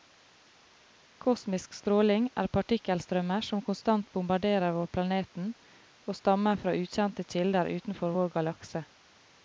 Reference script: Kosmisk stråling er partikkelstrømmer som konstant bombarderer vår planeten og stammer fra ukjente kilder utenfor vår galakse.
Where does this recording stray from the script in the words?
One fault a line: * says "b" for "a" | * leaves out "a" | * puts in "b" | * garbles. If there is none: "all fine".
all fine